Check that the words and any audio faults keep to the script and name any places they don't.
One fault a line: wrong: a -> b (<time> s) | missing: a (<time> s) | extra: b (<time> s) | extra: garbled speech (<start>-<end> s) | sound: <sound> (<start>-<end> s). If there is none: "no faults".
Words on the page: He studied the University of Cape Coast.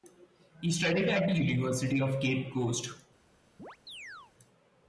extra: at (1.1 s)
sound: chirp (3.6-4.3 s)